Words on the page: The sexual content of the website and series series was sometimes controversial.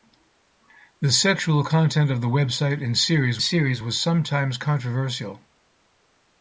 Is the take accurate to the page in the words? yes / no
yes